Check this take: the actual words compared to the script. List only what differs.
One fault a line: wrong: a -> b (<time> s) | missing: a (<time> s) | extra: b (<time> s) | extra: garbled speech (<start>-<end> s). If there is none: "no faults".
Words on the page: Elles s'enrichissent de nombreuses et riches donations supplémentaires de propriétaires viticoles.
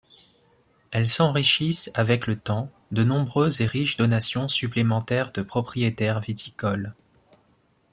extra: avec le temps (1.9 s)